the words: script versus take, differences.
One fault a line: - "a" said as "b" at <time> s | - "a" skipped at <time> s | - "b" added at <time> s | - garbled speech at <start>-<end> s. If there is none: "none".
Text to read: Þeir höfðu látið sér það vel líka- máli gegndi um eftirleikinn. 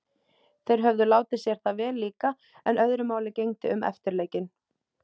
- "en öðru" added at 2.7 s